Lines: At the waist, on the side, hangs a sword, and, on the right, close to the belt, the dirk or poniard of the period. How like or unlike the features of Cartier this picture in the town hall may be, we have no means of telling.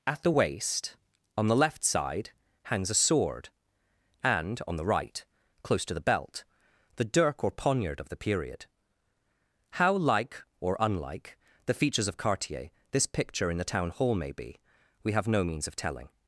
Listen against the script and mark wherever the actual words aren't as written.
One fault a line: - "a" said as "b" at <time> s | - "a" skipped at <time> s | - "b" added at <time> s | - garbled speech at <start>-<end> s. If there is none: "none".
- "left" added at 1.6 s